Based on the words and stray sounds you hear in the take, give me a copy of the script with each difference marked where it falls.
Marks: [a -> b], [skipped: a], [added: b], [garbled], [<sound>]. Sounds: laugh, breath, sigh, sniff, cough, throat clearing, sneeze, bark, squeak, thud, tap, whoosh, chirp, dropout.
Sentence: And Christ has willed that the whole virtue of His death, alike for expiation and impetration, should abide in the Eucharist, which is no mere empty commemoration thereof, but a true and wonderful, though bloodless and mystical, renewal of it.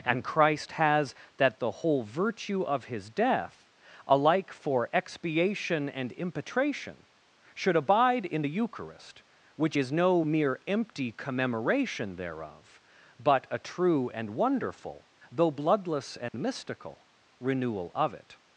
And Christ has [skipped: willed] that the whole virtue of His death, alike for expiation and impetration, should abide in the Eucharist, which is no mere empty commemoration thereof, but a true and wonderful, though bloodless and [dropout] mystical, renewal of it.